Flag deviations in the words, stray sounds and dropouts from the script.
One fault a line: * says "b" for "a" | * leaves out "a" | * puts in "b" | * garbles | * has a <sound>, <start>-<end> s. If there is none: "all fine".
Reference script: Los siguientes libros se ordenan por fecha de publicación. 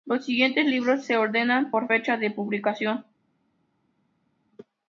all fine